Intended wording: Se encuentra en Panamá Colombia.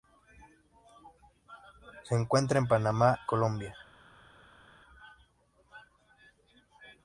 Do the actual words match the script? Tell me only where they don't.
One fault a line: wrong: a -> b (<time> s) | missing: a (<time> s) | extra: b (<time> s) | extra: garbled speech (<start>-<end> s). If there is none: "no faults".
no faults